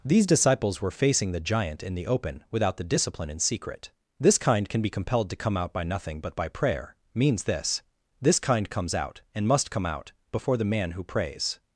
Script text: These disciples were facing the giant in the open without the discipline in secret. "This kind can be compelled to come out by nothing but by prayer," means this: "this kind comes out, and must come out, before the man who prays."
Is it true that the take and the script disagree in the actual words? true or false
false